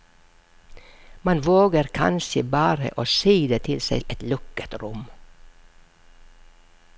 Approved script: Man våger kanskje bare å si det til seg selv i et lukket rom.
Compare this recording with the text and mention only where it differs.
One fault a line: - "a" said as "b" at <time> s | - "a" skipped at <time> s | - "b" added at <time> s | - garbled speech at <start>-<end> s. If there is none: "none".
- "selv" skipped at 4.0 s